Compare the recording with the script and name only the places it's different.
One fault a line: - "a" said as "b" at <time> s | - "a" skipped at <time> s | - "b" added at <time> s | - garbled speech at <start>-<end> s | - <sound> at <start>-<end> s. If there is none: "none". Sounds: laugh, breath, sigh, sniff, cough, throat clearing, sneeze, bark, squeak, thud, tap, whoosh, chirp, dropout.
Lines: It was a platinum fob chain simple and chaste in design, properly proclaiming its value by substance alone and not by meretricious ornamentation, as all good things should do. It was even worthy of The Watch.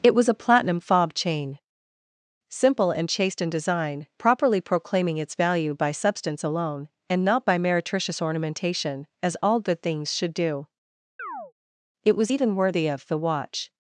- chirp at 11.2-11.5 s